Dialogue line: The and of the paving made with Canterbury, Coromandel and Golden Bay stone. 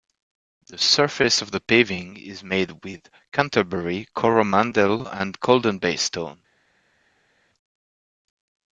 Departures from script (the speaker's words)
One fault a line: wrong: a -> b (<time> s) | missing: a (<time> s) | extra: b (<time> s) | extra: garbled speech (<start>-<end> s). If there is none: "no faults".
wrong: and -> surface (0.8 s)
extra: is (2.2 s)